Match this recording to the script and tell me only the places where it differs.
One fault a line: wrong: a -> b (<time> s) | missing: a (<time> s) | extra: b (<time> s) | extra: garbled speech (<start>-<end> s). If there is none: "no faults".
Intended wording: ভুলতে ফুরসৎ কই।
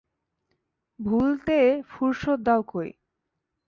extra: দাও (2.4 s)